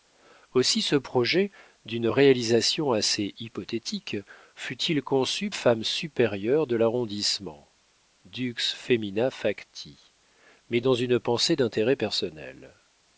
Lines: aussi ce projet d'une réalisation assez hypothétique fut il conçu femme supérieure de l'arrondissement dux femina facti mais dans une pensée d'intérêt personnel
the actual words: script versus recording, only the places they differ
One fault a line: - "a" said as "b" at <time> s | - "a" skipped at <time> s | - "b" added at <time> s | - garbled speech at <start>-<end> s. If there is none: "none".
none